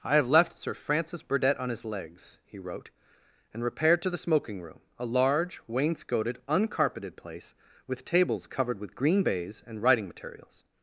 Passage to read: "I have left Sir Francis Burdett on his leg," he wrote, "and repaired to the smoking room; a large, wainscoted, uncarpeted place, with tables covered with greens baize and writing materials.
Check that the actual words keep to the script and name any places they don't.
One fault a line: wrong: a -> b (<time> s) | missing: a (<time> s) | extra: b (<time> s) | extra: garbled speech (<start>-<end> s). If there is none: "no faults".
wrong: leg -> legs (1.9 s)
wrong: greens -> green (8.9 s)